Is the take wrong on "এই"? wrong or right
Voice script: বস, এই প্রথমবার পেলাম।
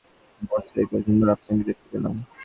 right